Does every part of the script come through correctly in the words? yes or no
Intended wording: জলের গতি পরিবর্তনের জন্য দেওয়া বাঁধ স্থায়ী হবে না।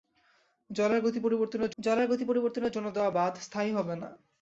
no